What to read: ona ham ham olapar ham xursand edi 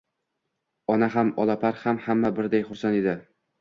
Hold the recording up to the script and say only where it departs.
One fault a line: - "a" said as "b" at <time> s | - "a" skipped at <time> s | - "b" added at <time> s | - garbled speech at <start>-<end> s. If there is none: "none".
- "olapar" added at 1.5 s
- "olapar ham" said as "hamma birday" at 2.1 s